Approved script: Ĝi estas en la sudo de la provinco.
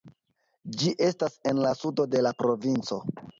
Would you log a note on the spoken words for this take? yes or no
no